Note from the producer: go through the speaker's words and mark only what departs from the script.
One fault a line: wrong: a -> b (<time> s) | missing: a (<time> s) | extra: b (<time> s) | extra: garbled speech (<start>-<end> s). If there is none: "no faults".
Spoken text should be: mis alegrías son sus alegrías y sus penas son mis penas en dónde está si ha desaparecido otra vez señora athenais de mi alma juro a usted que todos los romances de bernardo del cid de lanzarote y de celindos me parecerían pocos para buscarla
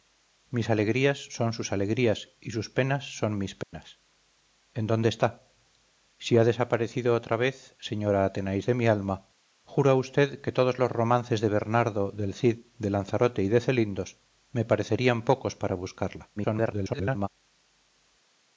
extra: garbled speech (16.4-17.3 s)